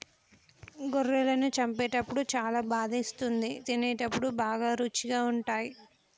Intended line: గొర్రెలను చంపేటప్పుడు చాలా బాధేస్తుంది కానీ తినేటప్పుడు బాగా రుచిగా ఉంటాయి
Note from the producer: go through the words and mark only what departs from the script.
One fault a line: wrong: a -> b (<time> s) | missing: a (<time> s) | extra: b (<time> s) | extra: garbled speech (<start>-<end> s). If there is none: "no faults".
missing: కానీ (3.5 s)